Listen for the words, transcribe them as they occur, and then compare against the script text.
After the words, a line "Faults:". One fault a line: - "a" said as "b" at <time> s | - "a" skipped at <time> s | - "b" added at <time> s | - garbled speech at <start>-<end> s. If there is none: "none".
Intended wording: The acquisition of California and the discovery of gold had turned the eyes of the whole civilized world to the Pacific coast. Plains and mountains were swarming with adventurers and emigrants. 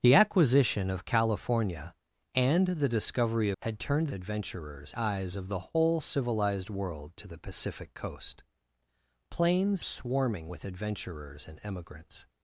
The acquisition of California and the discovery had turned adventurers eyes of the whole civilized world to the Pacific coast. Plains swarming with adventurers and emigrants.
Faults:
- "of gold" skipped at 3.5 s
- "the" said as "adventurers" at 4.1 s
- "and mountains were" skipped at 9.8 s